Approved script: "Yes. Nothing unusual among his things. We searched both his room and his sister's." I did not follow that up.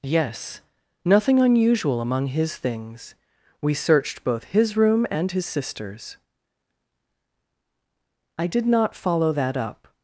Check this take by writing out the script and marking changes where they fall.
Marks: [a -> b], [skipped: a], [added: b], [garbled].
"Yes. Nothing unusual among his things. We searched both his room and his sister's." I did not follow that up.